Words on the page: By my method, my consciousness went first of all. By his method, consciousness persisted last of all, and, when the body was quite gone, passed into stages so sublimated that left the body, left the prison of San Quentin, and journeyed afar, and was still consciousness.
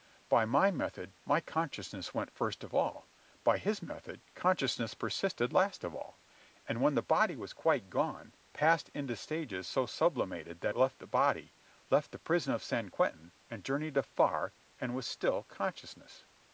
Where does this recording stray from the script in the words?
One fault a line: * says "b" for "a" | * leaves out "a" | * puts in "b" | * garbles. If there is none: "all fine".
all fine